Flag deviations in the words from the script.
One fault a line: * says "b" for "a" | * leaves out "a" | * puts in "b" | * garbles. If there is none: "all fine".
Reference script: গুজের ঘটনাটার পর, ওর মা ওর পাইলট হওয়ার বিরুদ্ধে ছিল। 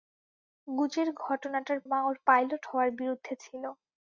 * leaves out "পর ওর"